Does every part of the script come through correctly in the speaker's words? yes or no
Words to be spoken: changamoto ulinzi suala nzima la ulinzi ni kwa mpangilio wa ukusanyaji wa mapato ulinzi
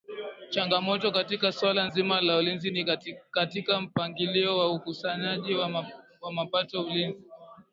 no